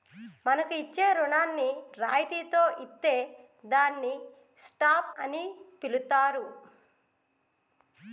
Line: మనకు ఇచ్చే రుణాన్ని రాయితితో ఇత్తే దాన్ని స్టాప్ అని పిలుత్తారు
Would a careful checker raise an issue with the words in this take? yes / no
no